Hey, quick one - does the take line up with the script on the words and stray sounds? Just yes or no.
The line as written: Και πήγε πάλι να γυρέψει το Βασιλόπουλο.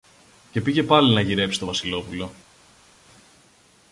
yes